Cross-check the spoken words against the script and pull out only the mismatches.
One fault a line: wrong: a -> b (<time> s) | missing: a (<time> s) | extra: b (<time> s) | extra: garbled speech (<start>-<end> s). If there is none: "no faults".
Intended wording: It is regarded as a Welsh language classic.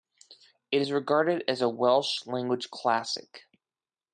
no faults